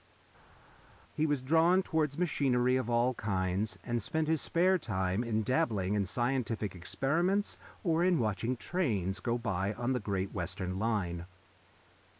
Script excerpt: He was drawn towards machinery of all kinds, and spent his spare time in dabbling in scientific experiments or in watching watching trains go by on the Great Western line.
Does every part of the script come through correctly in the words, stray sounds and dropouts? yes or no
no